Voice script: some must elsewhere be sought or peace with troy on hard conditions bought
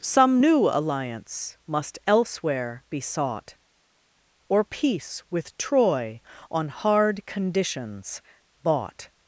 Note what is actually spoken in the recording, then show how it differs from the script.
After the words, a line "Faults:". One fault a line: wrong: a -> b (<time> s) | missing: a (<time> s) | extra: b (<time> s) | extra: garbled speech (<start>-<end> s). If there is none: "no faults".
some new alliance must elsewhere be sought or peace with troy on hard conditions bought
Faults:
extra: new alliance (0.4 s)